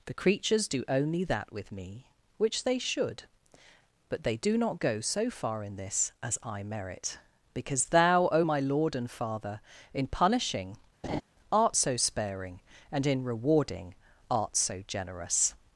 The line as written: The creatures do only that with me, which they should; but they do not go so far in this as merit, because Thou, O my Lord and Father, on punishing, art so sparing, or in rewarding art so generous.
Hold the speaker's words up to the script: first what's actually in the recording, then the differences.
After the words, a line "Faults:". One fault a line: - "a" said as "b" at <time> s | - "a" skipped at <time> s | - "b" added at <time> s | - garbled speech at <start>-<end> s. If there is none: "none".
The creatures do only that with me, which they should; but they do not go so far in this as I merit, because Thou, O my Lord and Father, in punishing, art so sparing, and in rewarding art so generous.
Faults:
- "I" added at 6.4 s
- "on" said as "in" at 9.9 s
- "or" said as "and" at 12.9 s